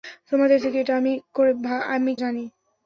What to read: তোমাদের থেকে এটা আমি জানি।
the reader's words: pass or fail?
pass